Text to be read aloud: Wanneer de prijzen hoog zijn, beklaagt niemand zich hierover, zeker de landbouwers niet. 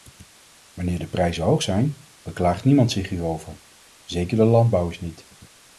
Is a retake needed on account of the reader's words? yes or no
no